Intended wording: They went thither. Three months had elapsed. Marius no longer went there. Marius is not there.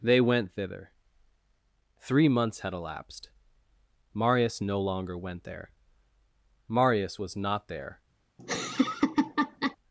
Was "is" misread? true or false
true